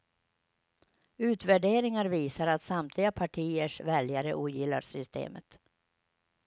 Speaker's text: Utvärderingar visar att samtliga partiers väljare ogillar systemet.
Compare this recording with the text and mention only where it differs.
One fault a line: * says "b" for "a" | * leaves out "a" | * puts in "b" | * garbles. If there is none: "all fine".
all fine